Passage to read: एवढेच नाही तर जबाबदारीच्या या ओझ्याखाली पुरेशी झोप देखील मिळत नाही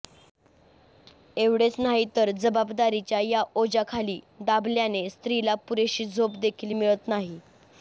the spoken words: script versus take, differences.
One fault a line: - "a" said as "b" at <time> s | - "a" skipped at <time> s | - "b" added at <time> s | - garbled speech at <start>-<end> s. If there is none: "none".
- "दाबल्याने स्त्रीला" added at 4.4 s